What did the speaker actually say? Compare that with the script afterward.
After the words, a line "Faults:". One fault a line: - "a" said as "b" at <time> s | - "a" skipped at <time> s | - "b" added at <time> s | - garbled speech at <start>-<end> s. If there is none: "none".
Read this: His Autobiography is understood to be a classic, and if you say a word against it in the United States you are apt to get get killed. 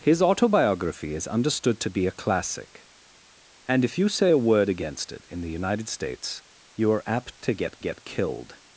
His Autobiography is understood to be a classic, and if you say a word against it in the United States you are apt to get get killed.
Faults:
none